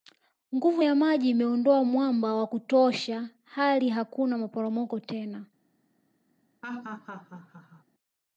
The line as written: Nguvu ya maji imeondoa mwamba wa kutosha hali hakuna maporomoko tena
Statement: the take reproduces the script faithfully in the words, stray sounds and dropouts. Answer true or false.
false